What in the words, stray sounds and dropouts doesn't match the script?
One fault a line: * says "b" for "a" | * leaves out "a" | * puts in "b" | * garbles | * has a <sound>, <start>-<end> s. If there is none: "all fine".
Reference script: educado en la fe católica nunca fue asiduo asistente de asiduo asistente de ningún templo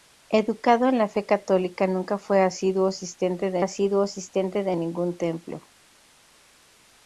all fine